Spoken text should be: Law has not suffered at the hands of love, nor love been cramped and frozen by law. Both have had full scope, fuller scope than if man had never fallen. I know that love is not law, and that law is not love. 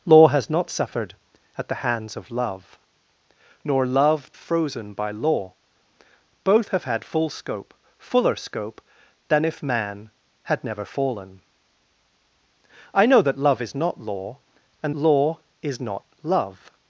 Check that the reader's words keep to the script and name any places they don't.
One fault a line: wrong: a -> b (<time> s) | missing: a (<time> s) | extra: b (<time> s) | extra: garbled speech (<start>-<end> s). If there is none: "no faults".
missing: been cramped and (4.3 s)
missing: that (14.9 s)